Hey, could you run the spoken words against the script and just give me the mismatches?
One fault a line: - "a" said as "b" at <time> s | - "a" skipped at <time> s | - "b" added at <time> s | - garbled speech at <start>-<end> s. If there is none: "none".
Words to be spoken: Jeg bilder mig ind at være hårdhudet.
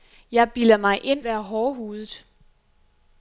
- "at" skipped at 1.2 s